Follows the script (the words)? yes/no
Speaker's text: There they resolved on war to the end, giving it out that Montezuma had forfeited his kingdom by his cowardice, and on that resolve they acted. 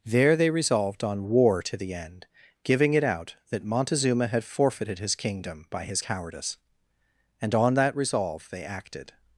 yes